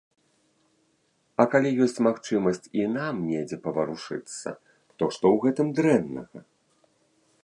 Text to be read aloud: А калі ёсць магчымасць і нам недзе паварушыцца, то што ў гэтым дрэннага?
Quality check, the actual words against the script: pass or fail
pass